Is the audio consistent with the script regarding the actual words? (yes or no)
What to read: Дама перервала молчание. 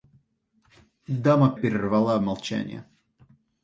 yes